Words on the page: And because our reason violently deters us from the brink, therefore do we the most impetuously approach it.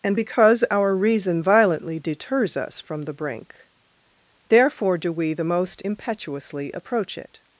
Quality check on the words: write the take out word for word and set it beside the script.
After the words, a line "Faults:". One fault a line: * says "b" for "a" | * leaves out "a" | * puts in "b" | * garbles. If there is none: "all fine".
And because our reason violently deters us from the brink, therefore do we the most impetuously approach it.
Faults:
all fine